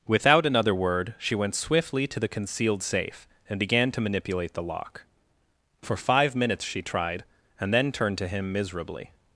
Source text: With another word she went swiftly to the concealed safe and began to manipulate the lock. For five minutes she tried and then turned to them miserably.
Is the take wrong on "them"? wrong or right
wrong